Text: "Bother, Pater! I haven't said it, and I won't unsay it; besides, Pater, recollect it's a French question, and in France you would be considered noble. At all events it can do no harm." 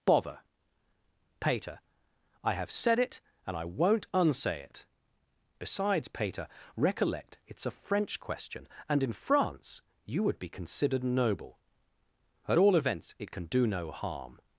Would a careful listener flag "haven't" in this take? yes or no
yes